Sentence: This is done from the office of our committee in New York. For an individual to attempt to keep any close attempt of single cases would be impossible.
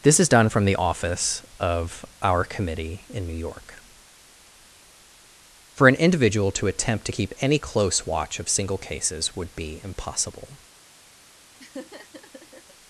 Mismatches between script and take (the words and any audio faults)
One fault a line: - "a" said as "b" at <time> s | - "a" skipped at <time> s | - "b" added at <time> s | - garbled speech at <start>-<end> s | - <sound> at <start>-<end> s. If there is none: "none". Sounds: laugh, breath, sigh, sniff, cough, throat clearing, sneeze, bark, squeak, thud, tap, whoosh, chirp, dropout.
- "attempt" said as "watch" at 8.0 s
- laugh at 11.6-12.7 s